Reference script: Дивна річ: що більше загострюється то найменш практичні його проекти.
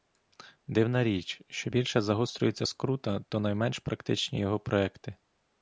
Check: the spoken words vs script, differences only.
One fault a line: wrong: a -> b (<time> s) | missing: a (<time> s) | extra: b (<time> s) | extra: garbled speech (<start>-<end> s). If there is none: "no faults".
extra: скрута (2.6 s)